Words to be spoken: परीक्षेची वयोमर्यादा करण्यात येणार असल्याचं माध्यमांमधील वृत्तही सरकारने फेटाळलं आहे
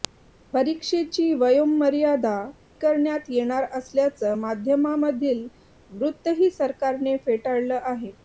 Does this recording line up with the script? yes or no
yes